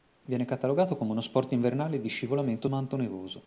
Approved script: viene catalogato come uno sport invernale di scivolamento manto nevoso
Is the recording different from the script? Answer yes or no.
no